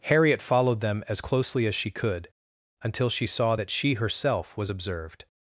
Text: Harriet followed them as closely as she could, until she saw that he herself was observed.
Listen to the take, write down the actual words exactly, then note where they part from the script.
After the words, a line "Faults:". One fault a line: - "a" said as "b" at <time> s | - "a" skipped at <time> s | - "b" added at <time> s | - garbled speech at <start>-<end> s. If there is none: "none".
Harriet followed them as closely as she could, until she saw that she herself was observed.
Faults:
- "he" said as "she" at 3.7 s